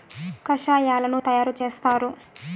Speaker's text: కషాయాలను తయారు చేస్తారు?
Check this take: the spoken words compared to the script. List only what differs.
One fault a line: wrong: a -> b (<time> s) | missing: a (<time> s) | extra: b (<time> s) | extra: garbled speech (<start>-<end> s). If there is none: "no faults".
no faults